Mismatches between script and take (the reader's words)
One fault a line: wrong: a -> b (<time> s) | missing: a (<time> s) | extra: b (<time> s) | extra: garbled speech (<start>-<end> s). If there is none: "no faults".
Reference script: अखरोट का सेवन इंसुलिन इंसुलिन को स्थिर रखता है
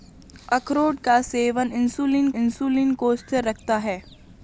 no faults